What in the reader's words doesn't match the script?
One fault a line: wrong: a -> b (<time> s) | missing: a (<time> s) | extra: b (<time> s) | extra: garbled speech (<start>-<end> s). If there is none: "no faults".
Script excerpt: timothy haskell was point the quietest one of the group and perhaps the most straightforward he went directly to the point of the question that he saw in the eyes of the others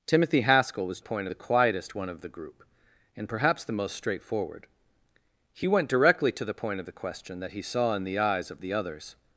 no faults